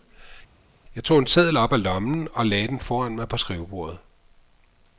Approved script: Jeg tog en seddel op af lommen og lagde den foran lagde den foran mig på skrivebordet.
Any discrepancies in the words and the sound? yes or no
yes